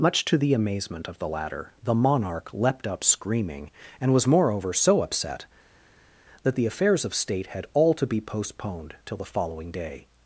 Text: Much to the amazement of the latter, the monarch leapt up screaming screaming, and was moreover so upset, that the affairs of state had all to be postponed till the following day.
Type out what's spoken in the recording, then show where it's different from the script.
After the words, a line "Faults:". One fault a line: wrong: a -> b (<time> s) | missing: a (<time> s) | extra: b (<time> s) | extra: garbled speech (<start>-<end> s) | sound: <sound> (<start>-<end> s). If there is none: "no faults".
Much to the amazement of the latter, the monarch leapt up screaming, and was moreover so upset, that the affairs of state had all to be postponed till the following day.
Faults:
missing: screaming (3.7 s)